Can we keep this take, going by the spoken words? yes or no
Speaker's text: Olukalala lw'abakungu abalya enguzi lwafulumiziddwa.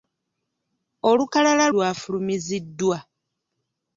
no